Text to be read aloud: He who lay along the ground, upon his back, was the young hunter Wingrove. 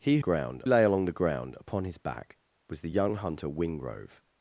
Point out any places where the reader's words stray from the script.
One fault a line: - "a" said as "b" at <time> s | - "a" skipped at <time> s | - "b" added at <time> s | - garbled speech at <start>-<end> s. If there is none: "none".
- "who" said as "ground" at 0.2 s